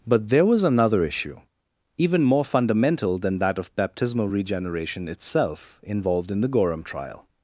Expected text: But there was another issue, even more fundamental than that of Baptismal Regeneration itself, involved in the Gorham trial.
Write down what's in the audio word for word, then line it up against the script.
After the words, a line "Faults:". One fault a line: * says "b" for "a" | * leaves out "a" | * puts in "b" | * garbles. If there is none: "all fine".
But there was another issue, even more fundamental than that of Baptismal Regeneration itself, involved in the Gorham trial.
Faults:
all fine